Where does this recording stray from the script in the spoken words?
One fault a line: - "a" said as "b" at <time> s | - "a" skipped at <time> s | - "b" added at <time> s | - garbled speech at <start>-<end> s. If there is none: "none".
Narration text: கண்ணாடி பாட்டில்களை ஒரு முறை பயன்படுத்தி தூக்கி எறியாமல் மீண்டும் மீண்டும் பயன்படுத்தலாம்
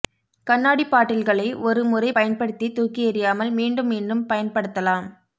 none